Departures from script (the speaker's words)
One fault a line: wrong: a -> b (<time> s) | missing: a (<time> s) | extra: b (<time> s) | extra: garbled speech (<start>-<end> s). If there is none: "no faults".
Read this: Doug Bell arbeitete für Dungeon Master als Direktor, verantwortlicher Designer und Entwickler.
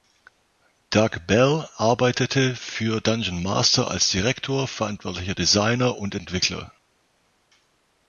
no faults